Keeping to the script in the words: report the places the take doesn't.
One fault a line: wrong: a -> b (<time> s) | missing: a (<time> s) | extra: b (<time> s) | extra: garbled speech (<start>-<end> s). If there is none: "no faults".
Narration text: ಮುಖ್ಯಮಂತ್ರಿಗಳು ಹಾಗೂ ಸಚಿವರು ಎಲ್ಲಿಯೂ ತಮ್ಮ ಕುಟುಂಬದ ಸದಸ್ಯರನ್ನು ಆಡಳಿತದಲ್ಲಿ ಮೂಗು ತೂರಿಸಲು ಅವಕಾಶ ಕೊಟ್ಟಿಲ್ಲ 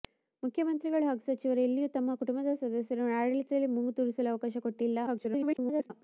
extra: garbled speech (5.1-5.9 s)